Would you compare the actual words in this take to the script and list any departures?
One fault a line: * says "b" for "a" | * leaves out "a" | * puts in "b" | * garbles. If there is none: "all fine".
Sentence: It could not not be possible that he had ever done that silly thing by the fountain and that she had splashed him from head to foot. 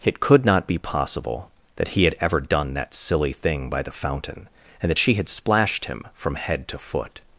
* leaves out "not"